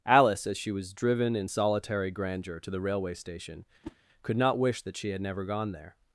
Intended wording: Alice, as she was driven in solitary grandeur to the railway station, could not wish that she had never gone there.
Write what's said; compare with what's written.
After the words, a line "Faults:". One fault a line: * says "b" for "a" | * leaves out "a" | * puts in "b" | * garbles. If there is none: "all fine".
Alice, as she was driven in solitary grandeur to the railway station, could not wish that she had never gone there.
Faults:
all fine